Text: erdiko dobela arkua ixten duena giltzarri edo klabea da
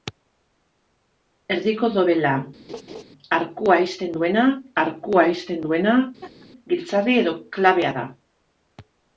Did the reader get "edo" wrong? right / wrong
right